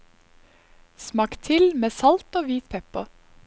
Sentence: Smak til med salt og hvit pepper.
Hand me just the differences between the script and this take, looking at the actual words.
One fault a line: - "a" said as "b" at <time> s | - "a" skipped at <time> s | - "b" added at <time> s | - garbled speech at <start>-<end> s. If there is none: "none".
none